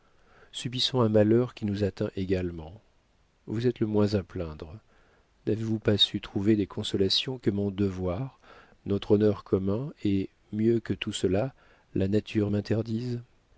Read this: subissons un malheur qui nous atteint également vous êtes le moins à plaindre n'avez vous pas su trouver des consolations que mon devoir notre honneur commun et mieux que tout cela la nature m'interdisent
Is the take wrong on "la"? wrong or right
right